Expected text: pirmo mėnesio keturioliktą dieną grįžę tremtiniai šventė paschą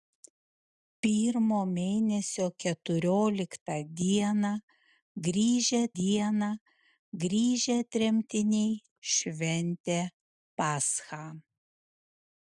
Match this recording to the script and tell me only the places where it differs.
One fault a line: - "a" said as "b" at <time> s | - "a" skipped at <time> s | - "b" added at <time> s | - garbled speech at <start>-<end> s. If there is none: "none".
- "dieną grįžę" added at 6.0 s